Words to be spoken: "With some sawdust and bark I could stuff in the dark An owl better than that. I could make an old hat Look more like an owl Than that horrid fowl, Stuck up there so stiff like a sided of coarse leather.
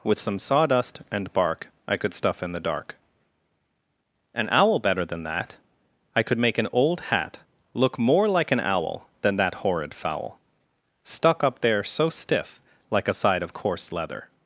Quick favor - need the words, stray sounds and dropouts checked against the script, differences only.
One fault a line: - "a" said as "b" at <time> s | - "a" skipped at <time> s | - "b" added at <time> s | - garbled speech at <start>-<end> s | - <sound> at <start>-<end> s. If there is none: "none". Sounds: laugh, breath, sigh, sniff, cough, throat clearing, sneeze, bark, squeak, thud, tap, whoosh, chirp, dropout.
- "sided" said as "side" at 13.1 s